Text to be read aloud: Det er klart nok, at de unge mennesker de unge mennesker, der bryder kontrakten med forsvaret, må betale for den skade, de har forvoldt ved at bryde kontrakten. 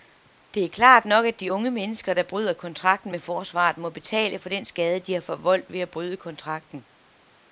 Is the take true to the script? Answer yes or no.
no